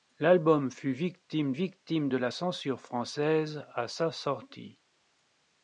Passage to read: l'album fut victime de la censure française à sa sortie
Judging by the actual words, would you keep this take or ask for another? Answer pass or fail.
fail